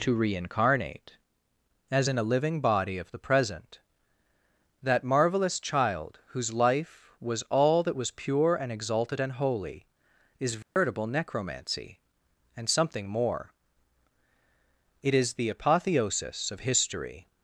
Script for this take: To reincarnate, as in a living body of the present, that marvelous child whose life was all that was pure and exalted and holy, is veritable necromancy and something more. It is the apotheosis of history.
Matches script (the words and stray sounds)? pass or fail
fail